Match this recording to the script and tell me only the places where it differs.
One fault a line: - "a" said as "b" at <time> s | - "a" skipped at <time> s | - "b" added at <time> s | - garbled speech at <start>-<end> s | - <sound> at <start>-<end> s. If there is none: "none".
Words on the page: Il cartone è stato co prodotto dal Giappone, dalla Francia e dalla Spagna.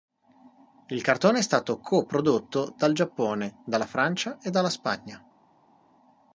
none